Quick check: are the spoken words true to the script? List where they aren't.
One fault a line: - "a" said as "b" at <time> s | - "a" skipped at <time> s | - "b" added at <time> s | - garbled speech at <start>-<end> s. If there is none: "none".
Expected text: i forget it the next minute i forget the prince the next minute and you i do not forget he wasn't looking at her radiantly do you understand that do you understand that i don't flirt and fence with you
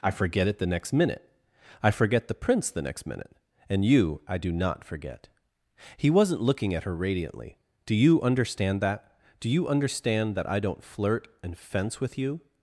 none